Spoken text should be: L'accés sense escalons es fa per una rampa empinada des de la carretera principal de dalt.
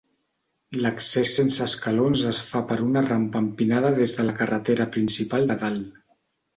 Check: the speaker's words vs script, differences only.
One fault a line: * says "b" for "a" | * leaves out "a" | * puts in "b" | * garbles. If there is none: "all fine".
all fine